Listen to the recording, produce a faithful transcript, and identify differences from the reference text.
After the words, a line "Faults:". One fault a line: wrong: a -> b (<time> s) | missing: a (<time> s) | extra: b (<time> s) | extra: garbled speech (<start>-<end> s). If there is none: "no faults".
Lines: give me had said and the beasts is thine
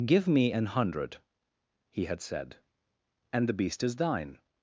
give me an hundred he had said and the beast is thine
Faults:
extra: an hundred he (0.5 s)
wrong: beasts -> beast (3.5 s)